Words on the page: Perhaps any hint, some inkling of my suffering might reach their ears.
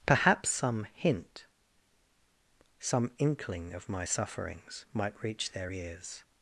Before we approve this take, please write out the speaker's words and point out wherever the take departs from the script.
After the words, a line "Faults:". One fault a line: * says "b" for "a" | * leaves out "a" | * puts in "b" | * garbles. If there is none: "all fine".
Perhaps some hint, some inkling of my sufferings might reach their ears.
Faults:
* says "some" for "any"
* says "sufferings" for "suffering"